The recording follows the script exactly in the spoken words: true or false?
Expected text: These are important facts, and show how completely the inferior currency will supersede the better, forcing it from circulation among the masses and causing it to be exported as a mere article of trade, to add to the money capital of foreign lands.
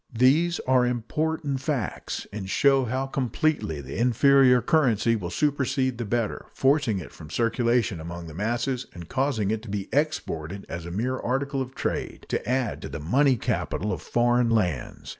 true